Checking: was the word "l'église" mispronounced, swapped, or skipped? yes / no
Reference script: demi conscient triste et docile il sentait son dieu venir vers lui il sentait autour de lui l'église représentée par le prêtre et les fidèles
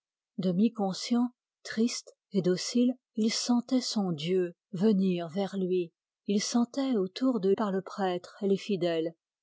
yes